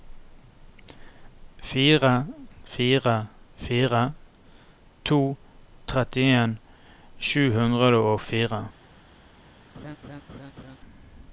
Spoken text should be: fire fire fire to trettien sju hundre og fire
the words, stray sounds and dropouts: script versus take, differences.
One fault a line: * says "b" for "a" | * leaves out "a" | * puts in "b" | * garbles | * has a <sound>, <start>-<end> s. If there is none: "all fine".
* has a laugh, 9.7-10.8 s